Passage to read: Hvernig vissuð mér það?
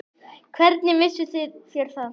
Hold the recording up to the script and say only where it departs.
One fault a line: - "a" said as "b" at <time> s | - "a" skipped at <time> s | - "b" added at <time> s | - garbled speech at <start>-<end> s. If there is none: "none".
- "mér" said as "þér" at 1.4 s